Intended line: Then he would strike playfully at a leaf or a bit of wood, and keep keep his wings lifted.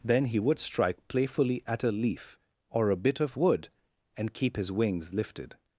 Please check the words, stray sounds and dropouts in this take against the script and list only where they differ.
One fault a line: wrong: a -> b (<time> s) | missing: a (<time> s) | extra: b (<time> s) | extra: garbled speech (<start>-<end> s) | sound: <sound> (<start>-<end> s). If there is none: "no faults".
missing: keep (4.6 s)